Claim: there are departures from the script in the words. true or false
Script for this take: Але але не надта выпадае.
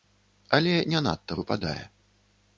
true